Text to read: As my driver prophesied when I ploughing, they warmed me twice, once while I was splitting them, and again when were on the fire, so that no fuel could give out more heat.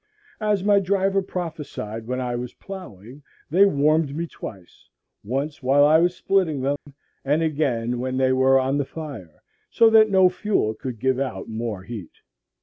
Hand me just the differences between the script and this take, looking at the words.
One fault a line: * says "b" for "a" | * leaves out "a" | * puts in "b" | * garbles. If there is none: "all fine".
* puts in "was"
* puts in "they"